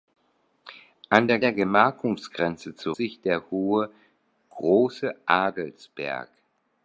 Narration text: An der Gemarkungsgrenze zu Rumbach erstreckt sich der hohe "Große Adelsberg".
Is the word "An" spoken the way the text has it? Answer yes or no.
yes